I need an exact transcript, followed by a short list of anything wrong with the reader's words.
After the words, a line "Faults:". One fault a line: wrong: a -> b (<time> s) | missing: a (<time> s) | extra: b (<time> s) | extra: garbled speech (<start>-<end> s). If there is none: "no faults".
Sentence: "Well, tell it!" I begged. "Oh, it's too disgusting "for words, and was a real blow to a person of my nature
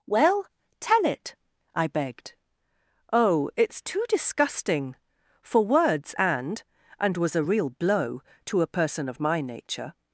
"Well, tell it!" I begged. "Oh, it's too disgusting "for words, and and was a real blow to a person of my nature
Faults:
extra: and (7.0 s)